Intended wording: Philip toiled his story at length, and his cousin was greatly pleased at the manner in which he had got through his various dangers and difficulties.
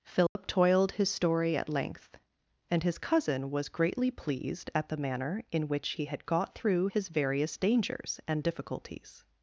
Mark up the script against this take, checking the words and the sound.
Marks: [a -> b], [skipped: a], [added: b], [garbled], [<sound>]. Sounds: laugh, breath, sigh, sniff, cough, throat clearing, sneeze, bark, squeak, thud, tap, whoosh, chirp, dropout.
Philip [dropout] toiled his story at length, and his cousin was greatly pleased at the manner in which he had got through his various dangers and difficulties.